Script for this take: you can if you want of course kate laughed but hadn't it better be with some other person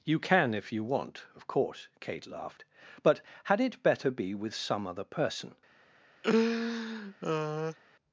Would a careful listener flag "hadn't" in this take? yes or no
yes